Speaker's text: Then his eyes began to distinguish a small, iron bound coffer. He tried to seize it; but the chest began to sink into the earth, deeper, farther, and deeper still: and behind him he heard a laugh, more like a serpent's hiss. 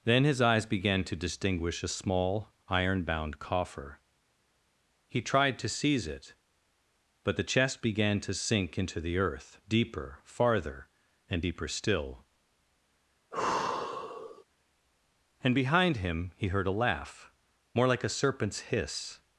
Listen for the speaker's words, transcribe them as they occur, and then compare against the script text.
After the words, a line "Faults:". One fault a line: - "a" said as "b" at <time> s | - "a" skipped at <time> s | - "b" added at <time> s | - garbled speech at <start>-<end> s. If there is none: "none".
Then his eyes began to distinguish a small, iron bound coffer. He tried to seize it; but the chest began to sink into the earth, deeper, farther, and deeper still: and behind him he heard a laugh, more like a serpent's hiss.
Faults:
none